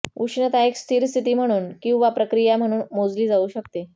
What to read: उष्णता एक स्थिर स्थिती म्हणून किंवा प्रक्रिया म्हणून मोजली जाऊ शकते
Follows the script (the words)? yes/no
yes